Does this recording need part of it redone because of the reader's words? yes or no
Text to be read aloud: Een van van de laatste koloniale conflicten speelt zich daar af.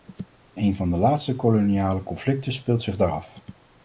yes